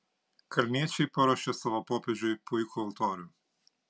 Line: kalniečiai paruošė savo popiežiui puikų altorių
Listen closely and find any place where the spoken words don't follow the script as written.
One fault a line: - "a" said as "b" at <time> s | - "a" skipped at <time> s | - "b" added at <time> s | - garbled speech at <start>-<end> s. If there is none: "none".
none